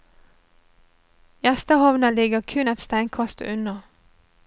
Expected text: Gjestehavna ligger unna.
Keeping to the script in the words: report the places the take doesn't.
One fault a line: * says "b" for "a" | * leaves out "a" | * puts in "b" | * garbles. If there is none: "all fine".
* puts in "kun et steinkast"